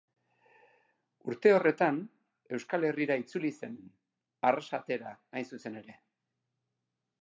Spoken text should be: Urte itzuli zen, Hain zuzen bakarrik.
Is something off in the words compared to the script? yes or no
yes